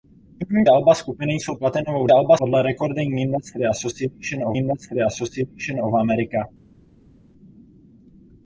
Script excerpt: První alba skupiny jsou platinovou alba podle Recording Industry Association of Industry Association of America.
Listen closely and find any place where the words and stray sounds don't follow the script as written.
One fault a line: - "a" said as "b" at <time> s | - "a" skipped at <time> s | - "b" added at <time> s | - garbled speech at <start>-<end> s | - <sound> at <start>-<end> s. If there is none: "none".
none